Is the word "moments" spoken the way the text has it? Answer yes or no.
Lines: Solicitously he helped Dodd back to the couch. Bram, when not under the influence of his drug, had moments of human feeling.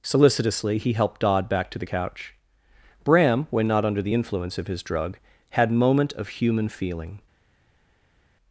no